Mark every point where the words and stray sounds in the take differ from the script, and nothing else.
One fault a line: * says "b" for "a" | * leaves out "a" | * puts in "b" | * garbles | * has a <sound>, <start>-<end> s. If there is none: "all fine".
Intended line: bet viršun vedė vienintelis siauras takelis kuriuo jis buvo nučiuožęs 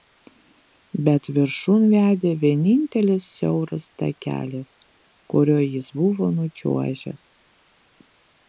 all fine